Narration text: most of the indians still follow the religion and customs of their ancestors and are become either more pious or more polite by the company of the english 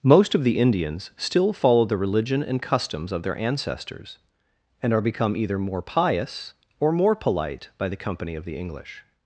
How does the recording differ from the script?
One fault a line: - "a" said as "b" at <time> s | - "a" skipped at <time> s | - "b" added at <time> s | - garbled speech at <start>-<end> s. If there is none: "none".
none